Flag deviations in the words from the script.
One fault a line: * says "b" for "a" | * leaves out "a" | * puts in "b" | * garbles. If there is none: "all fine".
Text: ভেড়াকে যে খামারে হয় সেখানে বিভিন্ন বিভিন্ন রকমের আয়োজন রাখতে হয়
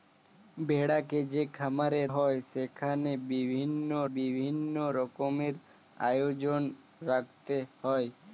all fine